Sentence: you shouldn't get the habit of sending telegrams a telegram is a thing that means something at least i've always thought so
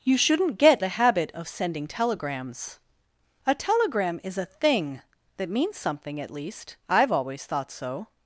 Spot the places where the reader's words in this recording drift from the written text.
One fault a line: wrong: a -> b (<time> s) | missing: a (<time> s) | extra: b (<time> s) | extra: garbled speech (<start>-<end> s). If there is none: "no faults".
no faults